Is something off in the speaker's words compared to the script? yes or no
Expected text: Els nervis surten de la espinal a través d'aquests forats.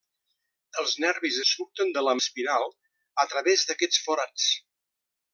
no